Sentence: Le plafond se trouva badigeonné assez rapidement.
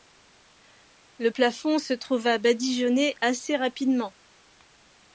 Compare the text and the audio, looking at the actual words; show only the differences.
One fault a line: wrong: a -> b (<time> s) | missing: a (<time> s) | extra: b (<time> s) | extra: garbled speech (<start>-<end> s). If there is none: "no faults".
no faults